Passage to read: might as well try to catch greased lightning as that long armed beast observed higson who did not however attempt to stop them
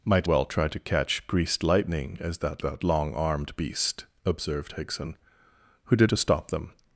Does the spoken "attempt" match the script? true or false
false